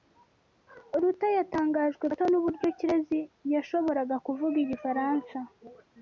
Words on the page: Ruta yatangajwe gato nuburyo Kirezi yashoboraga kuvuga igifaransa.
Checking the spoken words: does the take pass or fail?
pass